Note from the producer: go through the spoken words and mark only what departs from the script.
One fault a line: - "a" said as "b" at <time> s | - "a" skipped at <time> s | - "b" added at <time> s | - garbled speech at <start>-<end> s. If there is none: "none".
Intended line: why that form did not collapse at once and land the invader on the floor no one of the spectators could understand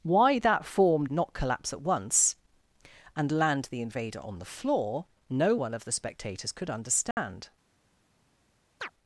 - "did" skipped at 1.1 s